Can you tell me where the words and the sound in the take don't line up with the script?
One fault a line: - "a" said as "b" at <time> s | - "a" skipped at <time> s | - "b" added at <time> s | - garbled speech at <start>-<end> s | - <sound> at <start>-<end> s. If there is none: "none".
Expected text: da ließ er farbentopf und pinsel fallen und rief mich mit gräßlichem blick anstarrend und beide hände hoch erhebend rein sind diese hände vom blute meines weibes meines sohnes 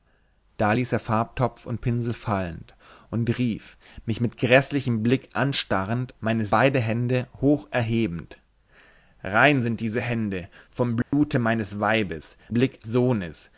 - "und" said as "meines" at 6.2 s
- dropout at 11.0-11.1 s
- "meines" said as "blick" at 12.5 s